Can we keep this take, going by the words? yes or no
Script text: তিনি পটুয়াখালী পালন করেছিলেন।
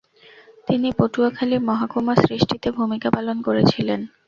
no